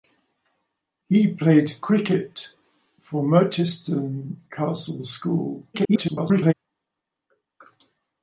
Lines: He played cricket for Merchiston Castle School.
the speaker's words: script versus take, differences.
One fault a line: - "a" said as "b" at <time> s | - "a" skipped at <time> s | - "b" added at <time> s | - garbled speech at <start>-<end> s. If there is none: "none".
- garbled speech at 5.7-6.5 s